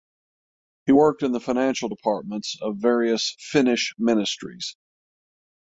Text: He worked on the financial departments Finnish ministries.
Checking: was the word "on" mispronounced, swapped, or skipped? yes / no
yes